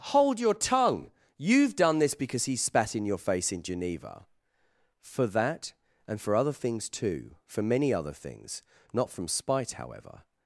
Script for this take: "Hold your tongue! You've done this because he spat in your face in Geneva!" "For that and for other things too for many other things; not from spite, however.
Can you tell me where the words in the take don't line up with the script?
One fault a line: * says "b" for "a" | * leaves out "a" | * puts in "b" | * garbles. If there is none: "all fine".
all fine